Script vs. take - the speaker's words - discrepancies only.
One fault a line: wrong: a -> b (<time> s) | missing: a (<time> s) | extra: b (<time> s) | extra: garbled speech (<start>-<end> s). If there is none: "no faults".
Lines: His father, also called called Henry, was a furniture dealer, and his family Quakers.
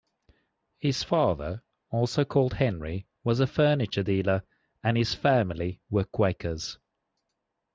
missing: called (2.5 s)
extra: were (5.9 s)